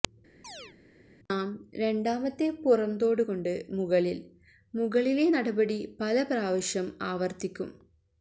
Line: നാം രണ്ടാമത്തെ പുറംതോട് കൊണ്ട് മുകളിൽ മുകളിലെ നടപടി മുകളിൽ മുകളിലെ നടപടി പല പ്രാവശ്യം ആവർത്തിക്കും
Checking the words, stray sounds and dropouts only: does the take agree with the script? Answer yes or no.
no